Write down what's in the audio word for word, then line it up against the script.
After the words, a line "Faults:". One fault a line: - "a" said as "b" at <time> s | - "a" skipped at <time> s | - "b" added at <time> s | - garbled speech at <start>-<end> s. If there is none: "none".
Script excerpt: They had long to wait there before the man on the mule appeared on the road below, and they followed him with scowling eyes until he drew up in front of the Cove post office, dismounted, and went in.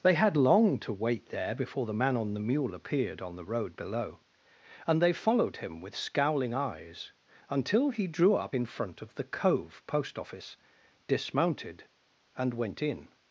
They had long to wait there before the man on the mule appeared on the road below, and they followed him with scowling eyes until he drew up in front of the Cove post office, dismounted, and went in.
Faults:
none